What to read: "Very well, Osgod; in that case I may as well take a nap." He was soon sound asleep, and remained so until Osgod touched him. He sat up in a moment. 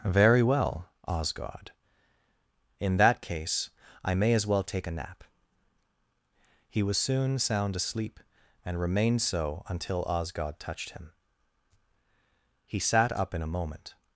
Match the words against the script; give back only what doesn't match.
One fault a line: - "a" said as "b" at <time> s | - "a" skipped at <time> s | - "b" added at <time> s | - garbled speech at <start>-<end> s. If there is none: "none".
none